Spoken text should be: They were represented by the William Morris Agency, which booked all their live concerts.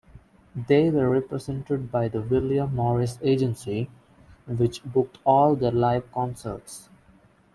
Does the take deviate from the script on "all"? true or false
false